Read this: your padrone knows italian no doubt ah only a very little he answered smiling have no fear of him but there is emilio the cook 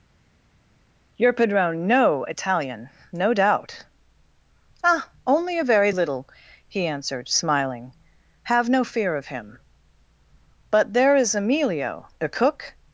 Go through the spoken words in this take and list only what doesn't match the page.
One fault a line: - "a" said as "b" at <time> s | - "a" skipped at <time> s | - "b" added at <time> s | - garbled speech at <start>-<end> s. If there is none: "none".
- "knows" said as "know" at 1.9 s